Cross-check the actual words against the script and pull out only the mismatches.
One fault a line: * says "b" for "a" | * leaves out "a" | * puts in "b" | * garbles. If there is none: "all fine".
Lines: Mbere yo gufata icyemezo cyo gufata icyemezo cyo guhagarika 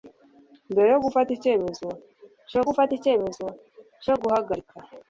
all fine